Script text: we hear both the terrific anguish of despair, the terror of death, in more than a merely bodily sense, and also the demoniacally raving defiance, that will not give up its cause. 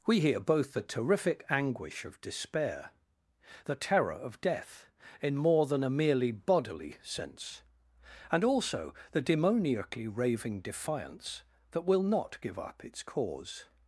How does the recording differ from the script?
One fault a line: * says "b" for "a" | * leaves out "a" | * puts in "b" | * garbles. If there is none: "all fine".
all fine